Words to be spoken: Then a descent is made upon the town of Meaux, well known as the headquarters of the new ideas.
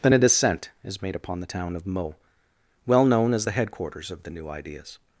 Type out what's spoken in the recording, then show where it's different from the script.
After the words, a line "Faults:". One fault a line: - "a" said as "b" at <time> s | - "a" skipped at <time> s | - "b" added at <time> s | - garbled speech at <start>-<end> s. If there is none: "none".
Then a descent is made upon the town of Meaux, well known as the headquarters of the new ideas.
Faults:
none